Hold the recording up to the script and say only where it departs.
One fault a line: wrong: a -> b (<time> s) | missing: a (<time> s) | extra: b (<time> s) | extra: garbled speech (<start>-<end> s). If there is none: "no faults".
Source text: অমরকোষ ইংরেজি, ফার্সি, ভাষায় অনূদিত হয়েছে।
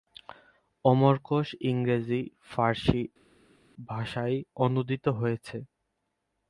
no faults